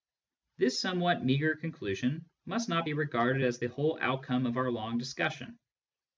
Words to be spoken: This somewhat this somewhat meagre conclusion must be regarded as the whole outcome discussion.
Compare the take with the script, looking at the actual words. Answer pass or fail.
fail